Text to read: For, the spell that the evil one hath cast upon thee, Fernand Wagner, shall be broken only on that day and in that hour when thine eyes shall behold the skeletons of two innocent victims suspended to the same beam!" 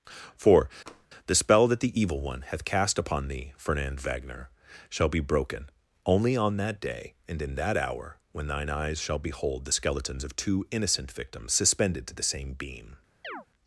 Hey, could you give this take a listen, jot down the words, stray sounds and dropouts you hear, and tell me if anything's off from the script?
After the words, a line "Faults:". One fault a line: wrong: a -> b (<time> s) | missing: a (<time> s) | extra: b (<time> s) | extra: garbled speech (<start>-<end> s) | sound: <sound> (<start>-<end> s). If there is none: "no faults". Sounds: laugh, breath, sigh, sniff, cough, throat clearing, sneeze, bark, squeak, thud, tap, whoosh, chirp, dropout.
For, the spell that the evil one hath cast upon thee, Fernand Wagner, shall be broken only on that day and in that hour when thine eyes shall behold the skeletons of two innocent victims suspended to the same beam!"
Faults:
sound: tap (0.9-1.1 s)
sound: chirp (13.2-13.5 s)